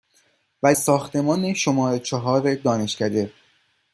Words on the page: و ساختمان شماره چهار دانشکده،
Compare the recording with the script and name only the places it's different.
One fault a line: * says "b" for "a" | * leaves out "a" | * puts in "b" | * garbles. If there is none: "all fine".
all fine